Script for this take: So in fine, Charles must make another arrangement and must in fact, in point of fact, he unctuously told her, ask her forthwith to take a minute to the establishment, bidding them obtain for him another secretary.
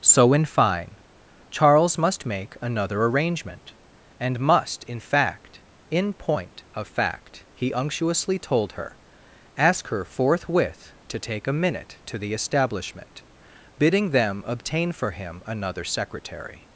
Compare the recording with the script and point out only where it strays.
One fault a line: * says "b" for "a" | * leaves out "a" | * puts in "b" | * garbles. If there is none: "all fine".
all fine